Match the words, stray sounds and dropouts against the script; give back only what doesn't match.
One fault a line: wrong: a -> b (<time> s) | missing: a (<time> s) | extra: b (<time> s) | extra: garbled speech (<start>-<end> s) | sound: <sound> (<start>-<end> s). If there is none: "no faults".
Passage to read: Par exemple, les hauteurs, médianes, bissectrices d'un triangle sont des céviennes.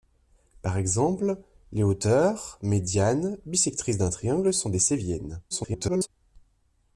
extra: garbled speech (5.5-6.1 s)